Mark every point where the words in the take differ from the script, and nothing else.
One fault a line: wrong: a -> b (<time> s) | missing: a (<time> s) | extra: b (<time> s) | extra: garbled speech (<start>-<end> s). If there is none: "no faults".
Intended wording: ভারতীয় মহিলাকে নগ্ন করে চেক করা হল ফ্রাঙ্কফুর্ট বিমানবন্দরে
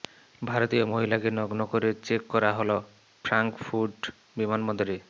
no faults